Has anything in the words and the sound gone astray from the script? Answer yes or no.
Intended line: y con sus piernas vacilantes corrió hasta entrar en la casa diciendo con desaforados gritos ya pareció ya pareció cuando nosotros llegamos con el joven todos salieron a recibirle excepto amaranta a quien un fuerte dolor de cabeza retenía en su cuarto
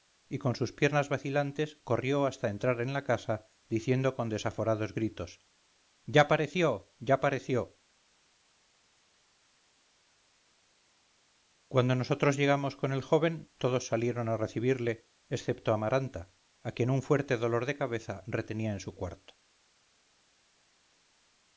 no